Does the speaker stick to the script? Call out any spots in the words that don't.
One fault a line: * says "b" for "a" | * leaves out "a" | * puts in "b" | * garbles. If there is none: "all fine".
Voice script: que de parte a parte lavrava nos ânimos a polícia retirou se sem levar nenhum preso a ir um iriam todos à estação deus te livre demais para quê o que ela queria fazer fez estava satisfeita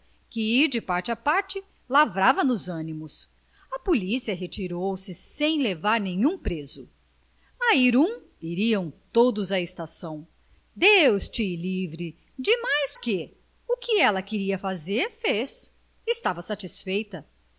* leaves out "para"